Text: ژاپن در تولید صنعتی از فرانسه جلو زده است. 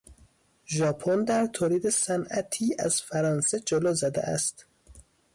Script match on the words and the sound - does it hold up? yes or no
yes